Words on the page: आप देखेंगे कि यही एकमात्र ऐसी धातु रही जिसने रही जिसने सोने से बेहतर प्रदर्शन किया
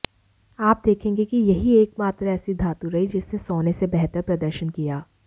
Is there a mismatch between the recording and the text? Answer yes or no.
yes